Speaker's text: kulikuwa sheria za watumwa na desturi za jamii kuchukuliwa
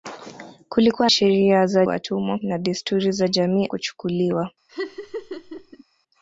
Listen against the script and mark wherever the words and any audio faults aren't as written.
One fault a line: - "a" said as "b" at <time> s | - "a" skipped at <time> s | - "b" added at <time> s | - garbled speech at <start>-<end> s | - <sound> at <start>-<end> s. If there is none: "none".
- laugh at 4.7-5.8 s